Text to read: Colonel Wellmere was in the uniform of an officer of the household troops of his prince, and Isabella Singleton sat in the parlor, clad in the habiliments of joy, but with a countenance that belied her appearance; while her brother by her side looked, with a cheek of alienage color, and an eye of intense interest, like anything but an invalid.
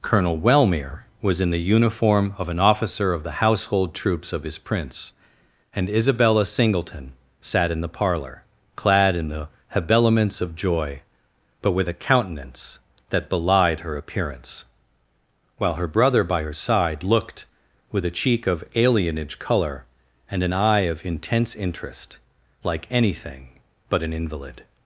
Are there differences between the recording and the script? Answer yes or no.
no